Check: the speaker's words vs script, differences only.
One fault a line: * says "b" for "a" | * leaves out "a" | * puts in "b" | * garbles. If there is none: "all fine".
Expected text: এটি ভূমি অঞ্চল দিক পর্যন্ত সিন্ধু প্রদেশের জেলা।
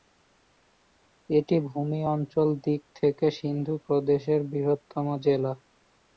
* says "থেকে" for "পর্যন্ত"
* puts in "বৃহত্তম"